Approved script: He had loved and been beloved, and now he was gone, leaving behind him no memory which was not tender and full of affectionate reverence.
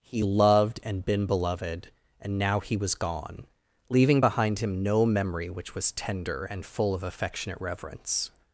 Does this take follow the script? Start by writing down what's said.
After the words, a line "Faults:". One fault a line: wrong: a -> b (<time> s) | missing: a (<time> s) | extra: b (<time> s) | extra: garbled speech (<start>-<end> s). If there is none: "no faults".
He loved and been beloved, and now he was gone, leaving behind him no memory which was tender and full of affectionate reverence.
Faults:
missing: had (0.2 s)
missing: not (5.9 s)